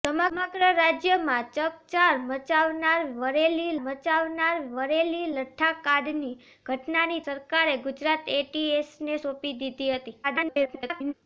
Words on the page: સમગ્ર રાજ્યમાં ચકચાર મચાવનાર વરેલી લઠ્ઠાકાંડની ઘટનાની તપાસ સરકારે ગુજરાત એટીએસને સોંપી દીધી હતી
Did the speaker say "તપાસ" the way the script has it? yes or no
no